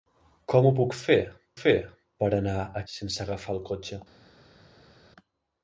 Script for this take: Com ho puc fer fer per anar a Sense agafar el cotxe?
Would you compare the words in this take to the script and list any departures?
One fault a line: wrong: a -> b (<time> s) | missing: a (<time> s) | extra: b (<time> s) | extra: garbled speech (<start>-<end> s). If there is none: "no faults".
no faults